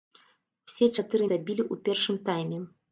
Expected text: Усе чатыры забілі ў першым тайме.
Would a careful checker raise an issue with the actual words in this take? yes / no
no